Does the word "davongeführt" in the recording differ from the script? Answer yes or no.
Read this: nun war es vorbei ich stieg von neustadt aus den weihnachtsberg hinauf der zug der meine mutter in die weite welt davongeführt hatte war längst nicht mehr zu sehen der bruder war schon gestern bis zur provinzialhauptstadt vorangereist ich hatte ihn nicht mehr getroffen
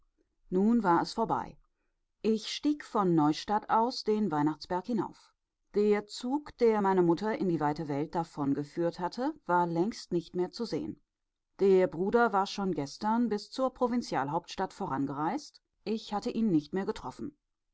no